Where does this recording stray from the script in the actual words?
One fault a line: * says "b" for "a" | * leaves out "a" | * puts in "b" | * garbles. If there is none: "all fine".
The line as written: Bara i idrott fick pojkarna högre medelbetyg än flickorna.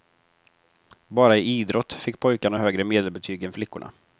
all fine